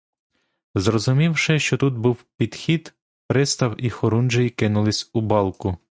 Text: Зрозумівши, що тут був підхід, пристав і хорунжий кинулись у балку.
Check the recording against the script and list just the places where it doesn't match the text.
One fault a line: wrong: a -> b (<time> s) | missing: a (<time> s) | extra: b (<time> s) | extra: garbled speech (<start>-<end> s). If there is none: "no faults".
no faults